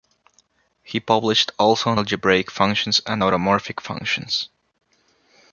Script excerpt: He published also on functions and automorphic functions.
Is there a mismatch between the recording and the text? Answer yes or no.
yes